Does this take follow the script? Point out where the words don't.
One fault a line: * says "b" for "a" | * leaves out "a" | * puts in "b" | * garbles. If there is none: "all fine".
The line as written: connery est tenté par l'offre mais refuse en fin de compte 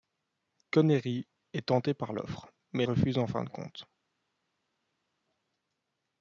all fine